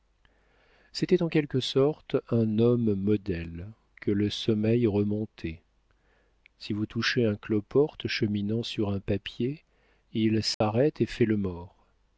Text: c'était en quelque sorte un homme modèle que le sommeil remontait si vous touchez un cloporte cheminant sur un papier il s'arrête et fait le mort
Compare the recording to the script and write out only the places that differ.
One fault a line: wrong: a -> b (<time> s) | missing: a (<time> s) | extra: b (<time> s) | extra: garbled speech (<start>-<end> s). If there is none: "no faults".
no faults